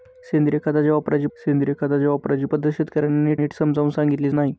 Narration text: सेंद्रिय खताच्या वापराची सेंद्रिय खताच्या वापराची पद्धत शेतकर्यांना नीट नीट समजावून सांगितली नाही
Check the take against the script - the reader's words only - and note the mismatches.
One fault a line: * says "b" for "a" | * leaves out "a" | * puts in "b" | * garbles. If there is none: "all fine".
all fine